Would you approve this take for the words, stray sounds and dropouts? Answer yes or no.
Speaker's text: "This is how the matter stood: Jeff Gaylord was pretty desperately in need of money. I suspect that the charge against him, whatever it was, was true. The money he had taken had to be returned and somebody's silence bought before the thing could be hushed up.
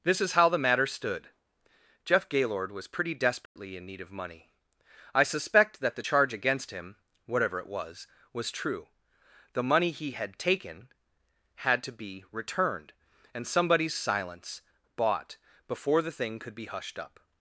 no